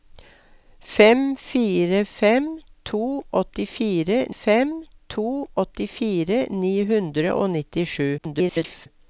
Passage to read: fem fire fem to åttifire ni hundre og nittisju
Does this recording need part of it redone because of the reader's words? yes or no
yes